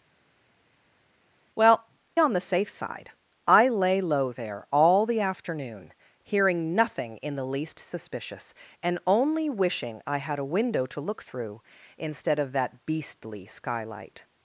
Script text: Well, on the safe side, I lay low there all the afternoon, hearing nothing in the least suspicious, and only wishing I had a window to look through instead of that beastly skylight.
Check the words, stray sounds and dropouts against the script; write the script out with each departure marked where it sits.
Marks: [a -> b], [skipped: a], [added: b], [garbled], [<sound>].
Well, on the safe side, I lay low there all the afternoon, hearing nothing in the least suspicious, and only wishing I had a window to look through instead of that beastly skylight.